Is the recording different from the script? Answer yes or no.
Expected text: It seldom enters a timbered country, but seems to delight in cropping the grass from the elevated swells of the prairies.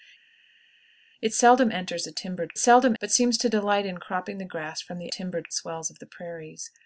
yes